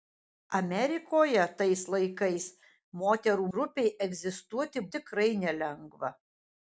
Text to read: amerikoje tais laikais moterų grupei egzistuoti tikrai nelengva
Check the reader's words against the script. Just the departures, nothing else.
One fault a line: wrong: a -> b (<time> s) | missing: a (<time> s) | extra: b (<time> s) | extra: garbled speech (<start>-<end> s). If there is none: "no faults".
no faults